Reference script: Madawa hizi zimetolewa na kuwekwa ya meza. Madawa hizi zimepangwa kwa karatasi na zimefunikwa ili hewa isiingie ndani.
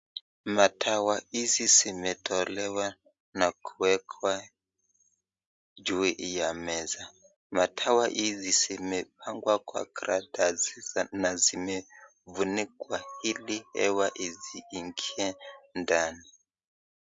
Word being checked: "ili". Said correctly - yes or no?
yes